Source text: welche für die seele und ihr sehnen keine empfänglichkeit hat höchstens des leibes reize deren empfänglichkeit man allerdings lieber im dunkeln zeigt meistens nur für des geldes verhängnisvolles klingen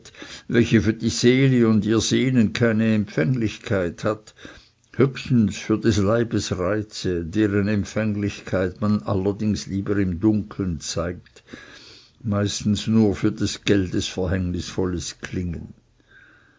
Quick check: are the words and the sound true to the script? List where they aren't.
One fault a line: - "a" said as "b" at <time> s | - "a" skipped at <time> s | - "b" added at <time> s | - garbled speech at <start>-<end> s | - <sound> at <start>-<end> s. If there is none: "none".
- "für" added at 5.6 s